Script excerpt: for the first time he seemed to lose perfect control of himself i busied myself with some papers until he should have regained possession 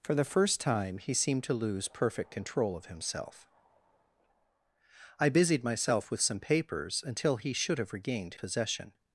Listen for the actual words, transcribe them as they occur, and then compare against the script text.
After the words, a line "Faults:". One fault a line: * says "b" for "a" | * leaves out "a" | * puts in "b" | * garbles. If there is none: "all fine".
for the first time he seemed to lose perfect control of himself i busied myself with some papers until he should have regained possession
Faults:
all fine